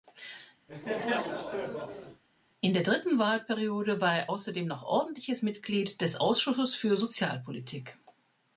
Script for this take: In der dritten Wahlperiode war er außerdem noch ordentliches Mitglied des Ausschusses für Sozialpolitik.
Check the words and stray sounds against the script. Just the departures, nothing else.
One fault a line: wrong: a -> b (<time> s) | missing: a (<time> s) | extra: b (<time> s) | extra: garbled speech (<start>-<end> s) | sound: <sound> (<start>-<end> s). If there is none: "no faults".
sound: laugh (0.7-2.2 s)